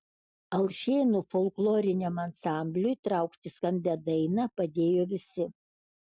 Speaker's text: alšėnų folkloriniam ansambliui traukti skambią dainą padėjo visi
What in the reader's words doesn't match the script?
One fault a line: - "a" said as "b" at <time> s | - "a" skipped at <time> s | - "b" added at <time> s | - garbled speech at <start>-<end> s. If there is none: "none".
none